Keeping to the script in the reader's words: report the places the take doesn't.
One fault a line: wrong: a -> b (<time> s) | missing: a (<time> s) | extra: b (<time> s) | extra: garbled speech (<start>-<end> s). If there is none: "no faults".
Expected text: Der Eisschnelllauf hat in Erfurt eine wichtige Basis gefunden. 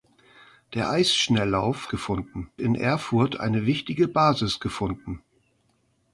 wrong: hat -> gefunden (1.9 s)